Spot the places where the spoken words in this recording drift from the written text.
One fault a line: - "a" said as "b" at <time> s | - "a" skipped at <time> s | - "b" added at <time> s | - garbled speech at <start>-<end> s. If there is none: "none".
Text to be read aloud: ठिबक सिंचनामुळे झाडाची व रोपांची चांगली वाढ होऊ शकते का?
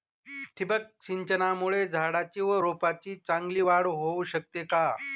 none